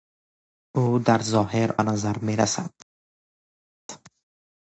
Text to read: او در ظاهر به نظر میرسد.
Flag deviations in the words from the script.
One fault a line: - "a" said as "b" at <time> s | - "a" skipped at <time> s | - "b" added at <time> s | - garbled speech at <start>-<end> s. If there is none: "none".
none